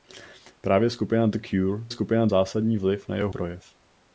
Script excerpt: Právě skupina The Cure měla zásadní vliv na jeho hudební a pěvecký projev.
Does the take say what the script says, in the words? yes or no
no